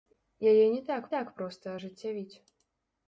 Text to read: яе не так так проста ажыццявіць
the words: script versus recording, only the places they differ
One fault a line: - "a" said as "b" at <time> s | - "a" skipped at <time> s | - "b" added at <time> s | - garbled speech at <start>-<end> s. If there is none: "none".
none